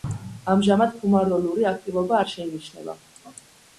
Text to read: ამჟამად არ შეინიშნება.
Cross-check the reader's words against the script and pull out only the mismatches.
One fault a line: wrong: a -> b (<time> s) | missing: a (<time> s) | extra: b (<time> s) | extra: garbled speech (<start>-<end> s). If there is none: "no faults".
extra: ფუმაროლური აქტივობა (1.0 s)